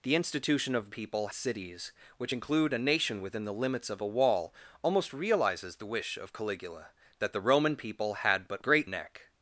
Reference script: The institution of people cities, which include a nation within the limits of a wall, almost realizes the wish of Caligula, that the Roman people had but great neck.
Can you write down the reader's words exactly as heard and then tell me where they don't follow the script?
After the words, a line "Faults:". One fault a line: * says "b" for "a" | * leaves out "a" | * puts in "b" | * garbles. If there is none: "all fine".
The institution of people cities, which include a nation within the limits of a wall, almost realizes the wish of Caligula, that the Roman people had but great neck.
Faults:
all fine